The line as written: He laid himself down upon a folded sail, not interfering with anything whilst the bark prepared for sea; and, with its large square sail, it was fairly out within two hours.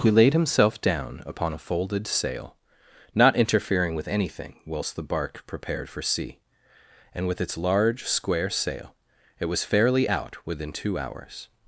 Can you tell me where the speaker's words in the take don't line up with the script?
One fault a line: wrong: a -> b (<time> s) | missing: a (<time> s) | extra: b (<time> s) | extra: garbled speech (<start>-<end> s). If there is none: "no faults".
no faults